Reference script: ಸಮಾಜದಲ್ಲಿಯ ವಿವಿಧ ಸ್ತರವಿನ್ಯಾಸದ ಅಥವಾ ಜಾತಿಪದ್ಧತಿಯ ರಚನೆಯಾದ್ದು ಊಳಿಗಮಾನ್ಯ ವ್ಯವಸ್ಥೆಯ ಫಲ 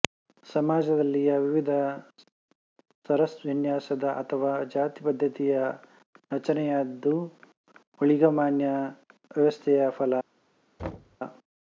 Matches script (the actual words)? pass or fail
pass